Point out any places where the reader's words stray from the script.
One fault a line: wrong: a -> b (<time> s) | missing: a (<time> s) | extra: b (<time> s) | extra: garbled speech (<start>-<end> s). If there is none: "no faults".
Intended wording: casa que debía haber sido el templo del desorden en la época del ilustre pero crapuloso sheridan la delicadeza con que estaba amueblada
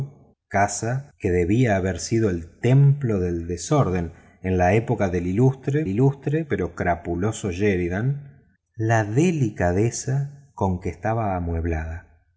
extra: ilustre (5.9 s)